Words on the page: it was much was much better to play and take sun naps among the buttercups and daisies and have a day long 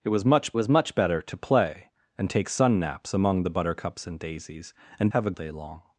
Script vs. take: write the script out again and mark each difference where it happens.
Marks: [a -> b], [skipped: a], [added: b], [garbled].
it was much was much better to play and take sun naps among the buttercups and daisies and have a day long